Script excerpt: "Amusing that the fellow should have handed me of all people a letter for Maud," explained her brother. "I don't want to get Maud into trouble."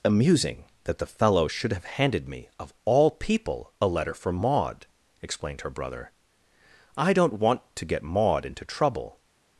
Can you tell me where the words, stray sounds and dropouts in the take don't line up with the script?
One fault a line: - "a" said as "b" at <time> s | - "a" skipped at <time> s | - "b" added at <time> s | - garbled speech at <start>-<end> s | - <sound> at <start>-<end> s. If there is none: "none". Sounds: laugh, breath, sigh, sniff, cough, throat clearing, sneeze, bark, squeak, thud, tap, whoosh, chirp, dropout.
none